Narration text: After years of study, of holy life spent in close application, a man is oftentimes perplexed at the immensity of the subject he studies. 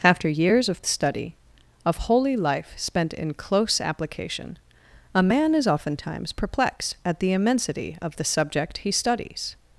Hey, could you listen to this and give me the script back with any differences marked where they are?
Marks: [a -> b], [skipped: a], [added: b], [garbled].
After years of study, of holy life spent in close application, a man is oftentimes perplexed at the immensity of the subject he studies.